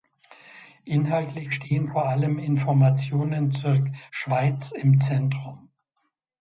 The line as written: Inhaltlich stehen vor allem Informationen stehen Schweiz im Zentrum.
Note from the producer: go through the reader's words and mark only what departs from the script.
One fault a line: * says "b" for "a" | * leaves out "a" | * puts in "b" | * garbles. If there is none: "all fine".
* says "zur" for "stehen"